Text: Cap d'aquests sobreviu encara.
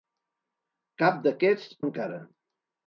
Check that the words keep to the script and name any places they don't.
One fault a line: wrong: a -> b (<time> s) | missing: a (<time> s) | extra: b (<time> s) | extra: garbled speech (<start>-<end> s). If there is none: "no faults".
missing: sobreviu (1.7 s)